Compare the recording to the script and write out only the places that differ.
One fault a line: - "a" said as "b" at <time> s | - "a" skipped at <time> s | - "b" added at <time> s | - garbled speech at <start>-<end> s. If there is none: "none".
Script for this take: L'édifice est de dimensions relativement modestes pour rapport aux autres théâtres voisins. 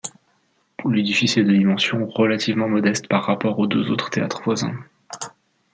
- "pour" said as "par" at 3.1 s
- "deux" added at 3.7 s